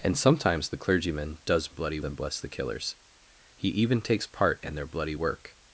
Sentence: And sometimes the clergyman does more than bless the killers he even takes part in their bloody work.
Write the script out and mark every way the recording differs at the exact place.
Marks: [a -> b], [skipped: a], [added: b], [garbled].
And sometimes the clergyman does [more -> bloody] than bless the killers he even takes part in their bloody work.